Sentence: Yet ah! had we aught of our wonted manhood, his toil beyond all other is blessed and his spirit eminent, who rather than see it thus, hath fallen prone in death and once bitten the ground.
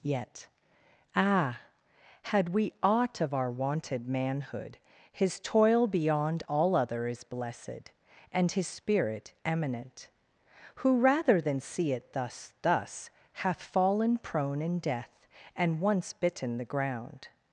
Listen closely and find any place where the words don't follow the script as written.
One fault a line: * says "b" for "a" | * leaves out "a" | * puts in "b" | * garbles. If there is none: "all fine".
* puts in "thus"